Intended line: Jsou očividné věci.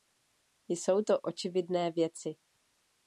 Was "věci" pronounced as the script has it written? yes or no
yes